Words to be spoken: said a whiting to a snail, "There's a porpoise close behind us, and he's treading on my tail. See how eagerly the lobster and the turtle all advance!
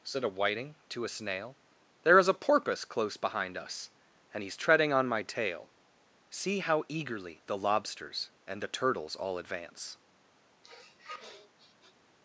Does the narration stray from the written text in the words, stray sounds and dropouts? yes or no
yes